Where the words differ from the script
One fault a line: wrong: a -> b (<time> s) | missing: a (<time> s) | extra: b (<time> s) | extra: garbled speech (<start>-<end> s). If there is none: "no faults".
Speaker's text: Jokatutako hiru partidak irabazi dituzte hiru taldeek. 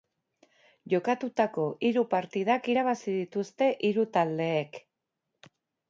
no faults